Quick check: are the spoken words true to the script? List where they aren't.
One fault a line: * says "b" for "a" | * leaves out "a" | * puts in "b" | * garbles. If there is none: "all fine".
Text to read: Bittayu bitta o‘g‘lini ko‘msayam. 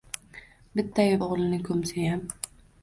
* leaves out "bitta"